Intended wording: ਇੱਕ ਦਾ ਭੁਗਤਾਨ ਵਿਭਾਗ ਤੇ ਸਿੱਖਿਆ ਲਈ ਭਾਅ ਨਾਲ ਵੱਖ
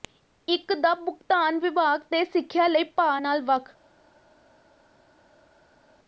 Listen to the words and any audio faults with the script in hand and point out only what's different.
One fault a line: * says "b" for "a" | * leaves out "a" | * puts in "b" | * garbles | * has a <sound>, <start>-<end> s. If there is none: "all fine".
all fine